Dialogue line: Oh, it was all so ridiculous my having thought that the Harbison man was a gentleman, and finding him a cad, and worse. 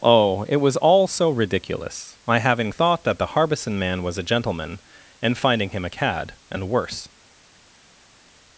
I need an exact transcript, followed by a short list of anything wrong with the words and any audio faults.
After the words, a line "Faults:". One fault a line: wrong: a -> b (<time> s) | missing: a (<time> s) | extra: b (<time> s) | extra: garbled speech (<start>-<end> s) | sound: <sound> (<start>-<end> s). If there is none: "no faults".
Oh, it was all so ridiculous my having thought that the Harbison man was a gentleman, and finding him a cad, and worse.
Faults:
no faults